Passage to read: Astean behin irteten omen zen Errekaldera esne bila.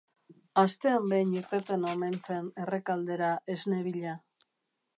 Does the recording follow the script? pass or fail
pass